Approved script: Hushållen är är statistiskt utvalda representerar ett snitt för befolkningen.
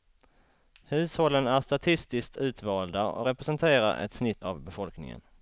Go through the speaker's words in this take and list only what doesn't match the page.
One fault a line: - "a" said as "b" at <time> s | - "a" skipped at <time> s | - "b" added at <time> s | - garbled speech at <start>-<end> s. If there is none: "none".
- "är" skipped at 1.6 s
- "och" added at 3.0 s
- "för" said as "av" at 4.4 s